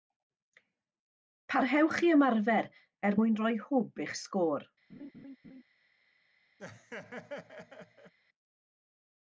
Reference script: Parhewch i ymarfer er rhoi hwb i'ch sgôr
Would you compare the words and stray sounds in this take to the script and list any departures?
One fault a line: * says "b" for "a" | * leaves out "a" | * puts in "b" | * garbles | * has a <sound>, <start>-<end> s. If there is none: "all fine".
* puts in "mwyn"
* has a laugh, 4.9-5.6 s
* has a laugh, 6.6-8.1 s